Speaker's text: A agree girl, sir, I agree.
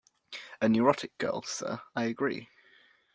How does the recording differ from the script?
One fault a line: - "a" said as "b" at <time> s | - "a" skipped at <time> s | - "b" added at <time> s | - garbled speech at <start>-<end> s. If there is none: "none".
- "agree" said as "neurotic" at 0.7 s